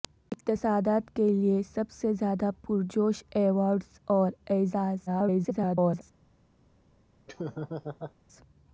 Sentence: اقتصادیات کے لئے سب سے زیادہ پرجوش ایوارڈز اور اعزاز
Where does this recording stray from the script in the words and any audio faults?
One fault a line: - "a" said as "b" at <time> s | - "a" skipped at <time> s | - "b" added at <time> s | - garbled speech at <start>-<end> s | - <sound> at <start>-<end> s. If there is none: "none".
- garbled speech at 5.1-6.0 s
- laugh at 7.3-8.1 s